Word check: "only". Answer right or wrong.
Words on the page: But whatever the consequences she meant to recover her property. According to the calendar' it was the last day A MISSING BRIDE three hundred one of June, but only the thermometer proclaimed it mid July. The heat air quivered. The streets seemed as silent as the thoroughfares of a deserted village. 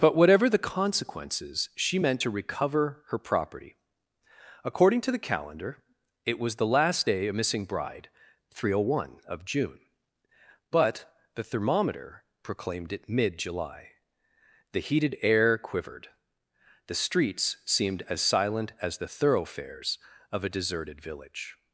wrong